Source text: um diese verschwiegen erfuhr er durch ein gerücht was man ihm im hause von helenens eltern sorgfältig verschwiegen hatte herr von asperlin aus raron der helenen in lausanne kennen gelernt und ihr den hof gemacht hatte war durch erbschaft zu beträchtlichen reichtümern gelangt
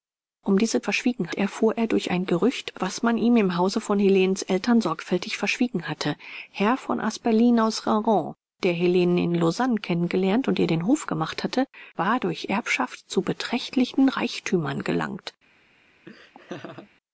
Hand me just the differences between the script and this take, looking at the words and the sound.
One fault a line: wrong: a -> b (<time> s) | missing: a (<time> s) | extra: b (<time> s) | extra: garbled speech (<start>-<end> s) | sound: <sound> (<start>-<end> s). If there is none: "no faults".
sound: laugh (16.1-16.9 s)